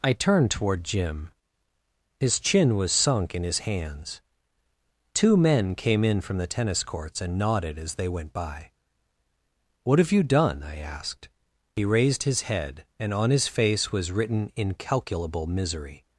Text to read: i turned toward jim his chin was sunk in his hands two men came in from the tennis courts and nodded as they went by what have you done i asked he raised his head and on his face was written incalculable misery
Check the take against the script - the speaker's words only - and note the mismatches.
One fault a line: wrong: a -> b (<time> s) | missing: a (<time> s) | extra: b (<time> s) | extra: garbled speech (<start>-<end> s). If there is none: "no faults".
no faults